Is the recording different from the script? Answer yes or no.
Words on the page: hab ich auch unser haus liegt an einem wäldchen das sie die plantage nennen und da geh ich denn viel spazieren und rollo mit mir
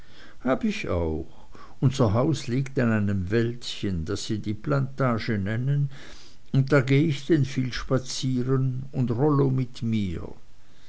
no